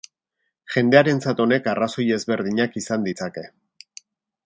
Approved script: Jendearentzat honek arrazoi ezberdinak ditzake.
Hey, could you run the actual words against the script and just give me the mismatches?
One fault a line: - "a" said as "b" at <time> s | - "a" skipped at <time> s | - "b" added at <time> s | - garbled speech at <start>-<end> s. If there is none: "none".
- "izan" added at 2.9 s